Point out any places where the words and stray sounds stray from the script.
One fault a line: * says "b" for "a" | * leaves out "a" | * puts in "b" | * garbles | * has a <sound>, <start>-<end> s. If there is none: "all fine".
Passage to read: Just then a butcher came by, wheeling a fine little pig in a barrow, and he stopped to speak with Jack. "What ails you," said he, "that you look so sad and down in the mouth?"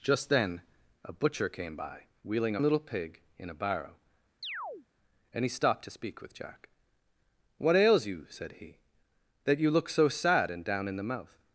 * leaves out "fine"
* has a chirp, 4.4-4.9 s